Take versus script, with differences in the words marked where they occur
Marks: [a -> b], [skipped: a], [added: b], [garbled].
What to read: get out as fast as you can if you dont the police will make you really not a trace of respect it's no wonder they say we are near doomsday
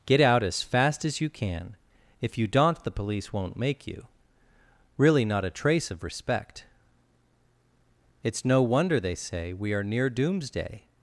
get out as fast as you can if you dont the police [will -> won't] make you really not a trace of respect it's no wonder they say we are near doomsday